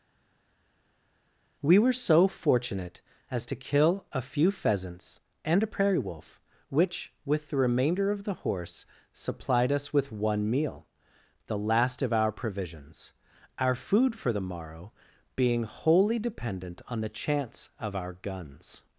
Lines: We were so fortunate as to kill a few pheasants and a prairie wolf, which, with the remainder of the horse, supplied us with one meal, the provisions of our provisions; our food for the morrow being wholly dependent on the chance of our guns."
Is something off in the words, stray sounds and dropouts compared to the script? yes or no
yes